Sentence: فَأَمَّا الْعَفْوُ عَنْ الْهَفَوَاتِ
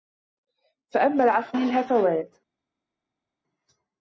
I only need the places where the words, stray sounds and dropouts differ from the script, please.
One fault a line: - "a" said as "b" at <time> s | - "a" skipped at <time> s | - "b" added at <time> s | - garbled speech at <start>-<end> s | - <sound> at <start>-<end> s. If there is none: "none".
- "عَنْ" skipped at 1.6 s